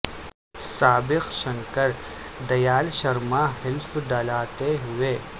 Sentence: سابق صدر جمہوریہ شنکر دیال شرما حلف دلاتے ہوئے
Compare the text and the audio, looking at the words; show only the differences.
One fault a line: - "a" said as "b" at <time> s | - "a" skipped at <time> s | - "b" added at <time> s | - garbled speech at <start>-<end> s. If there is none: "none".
- "صدر جمہوریہ" skipped at 1.3 s